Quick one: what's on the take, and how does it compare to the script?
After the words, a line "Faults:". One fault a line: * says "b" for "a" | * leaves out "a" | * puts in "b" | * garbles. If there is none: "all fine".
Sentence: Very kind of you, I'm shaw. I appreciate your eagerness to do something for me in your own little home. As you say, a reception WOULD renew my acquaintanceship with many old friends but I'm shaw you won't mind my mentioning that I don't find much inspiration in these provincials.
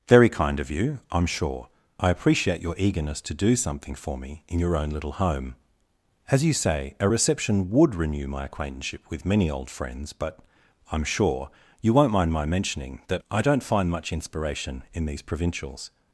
Very kind of you, I'm sure. I appreciate your eagerness to do something for me in your own little home. As you say, a reception WOULD renew my acquaintanceship with many old friends but I'm sure you won't mind my mentioning that I don't find much inspiration in these provincials.
Faults:
* says "sure" for "shaw"
* says "sure" for "shaw"